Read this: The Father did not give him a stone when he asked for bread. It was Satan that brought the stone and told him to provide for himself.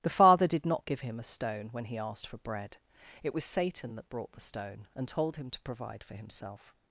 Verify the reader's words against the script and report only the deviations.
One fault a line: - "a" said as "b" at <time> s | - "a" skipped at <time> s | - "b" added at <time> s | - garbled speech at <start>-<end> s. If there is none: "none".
none